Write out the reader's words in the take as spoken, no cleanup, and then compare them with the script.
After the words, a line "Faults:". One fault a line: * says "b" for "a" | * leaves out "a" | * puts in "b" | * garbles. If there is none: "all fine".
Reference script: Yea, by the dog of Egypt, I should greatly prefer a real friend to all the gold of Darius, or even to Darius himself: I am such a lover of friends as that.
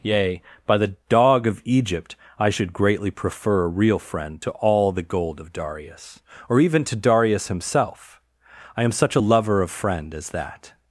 Yea, by the dog of Egypt, I should greatly prefer a real friend to all the gold of Darius, or even to Darius himself: I am such a lover of friend as that.
Faults:
* says "friend" for "friends"